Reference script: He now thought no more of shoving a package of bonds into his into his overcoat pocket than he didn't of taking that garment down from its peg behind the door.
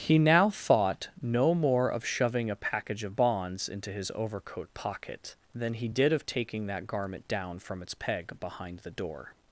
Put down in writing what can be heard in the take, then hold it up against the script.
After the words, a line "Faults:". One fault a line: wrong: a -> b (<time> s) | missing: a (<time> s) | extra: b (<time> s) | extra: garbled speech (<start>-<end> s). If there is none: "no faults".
He now thought no more of shoving a package of bonds into his overcoat pocket than he did of taking that garment down from its peg behind the door.
Faults:
missing: into his (4.1 s)
wrong: didn't -> did (5.9 s)